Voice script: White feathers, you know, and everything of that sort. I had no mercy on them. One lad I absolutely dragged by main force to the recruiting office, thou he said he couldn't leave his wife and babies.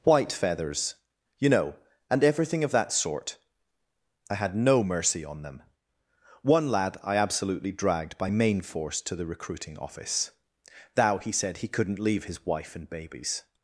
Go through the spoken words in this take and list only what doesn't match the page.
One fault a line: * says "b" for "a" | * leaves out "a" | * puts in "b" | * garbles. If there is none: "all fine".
all fine